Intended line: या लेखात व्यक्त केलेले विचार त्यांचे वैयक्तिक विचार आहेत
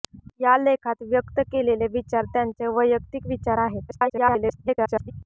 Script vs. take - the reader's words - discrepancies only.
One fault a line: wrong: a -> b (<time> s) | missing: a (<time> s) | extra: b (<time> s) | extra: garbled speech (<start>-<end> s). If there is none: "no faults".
extra: garbled speech (3.9-5.1 s)